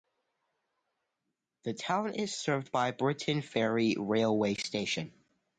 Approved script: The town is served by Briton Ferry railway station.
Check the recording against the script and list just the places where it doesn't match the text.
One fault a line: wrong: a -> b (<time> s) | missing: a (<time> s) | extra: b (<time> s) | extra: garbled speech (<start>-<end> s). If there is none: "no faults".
no faults